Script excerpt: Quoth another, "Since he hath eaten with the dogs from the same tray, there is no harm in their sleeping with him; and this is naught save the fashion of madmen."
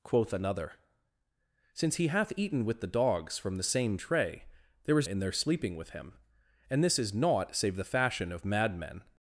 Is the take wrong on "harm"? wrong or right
wrong